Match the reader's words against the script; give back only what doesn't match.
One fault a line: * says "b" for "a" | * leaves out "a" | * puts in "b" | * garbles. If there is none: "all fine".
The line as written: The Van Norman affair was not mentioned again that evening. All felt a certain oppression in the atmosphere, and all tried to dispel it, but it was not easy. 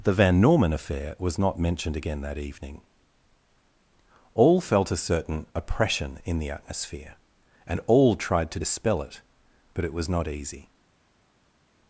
all fine